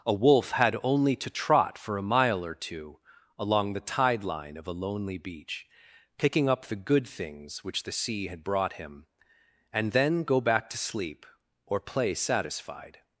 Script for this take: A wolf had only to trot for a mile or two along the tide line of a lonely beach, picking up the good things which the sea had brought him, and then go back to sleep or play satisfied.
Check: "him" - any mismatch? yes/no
no